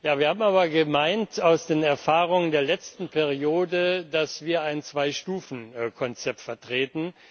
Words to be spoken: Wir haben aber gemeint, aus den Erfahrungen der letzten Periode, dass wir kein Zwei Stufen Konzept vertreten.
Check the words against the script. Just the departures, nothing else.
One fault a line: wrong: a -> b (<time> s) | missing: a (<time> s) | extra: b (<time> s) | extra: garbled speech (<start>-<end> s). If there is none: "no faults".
wrong: kein -> ein (4.6 s)